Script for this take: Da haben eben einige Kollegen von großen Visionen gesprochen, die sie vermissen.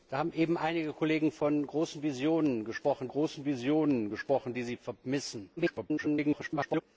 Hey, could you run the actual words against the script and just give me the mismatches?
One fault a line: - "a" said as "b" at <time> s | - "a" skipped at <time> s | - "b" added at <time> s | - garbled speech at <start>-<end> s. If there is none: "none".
- "großen Visionen gesprochen" added at 3.1 s
- garbled speech at 5.6-6.8 s